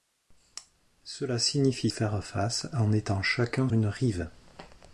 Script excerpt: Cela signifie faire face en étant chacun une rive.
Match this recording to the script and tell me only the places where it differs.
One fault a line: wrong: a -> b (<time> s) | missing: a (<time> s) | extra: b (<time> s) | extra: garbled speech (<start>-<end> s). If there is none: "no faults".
no faults